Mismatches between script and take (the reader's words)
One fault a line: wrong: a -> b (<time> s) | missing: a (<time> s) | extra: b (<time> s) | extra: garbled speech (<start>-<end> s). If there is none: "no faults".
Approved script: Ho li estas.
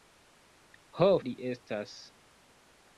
no faults